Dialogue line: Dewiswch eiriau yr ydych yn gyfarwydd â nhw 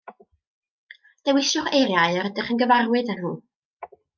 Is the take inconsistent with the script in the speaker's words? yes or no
no